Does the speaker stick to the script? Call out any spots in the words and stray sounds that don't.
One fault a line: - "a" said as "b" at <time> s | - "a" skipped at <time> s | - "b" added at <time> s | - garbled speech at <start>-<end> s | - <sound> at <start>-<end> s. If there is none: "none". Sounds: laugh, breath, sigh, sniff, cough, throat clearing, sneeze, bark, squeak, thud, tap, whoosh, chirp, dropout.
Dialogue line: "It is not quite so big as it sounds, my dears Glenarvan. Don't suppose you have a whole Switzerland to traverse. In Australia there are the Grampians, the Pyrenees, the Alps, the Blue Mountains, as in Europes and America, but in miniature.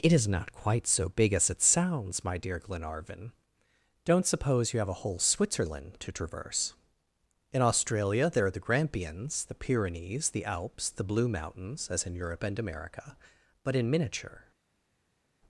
- "dears" said as "dear" at 2.4 s
- "Europes" said as "Europe" at 12.2 s